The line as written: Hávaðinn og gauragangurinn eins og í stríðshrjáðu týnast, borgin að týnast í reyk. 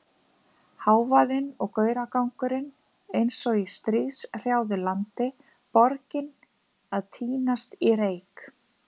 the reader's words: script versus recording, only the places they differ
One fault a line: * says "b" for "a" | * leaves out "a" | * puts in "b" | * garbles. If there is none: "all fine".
* says "landi" for "týnast"